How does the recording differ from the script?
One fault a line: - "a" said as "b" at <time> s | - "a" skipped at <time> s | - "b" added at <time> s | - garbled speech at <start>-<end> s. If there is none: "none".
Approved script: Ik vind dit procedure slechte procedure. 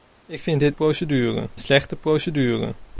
none